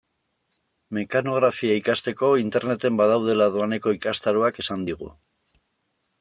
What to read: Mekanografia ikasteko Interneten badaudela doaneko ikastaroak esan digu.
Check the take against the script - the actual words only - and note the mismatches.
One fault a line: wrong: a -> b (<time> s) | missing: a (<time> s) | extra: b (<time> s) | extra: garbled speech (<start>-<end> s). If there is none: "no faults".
no faults